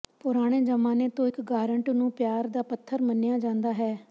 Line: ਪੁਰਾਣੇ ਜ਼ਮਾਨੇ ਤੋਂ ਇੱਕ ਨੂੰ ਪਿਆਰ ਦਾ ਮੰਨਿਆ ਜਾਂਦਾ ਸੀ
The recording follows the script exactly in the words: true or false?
false